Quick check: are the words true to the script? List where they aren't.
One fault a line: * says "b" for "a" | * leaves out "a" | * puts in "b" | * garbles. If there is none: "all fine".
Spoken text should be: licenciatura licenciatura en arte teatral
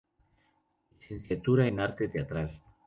* leaves out "licenciatura"